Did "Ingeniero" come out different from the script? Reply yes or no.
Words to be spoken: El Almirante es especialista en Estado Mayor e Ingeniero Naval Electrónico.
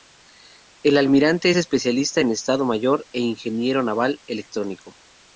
no